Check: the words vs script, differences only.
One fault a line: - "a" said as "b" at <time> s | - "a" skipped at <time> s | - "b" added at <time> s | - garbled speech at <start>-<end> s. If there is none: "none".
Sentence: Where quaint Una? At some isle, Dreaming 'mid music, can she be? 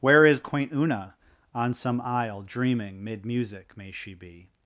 - "is" added at 0.2 s
- "At" said as "On" at 1.5 s
- "can" said as "may" at 3.8 s